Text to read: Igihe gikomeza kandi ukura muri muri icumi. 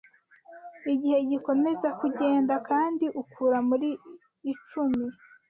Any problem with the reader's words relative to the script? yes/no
yes